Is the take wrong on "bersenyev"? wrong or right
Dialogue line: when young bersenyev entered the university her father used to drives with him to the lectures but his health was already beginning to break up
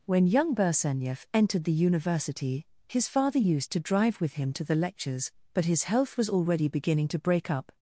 right